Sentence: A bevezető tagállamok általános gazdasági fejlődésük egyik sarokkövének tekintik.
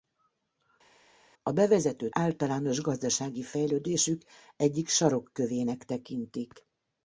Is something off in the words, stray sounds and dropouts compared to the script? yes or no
yes